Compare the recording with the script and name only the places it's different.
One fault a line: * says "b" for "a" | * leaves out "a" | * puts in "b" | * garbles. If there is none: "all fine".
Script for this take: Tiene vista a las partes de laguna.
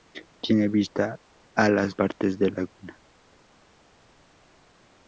all fine